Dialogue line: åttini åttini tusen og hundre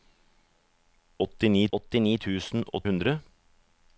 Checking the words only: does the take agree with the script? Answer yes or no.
yes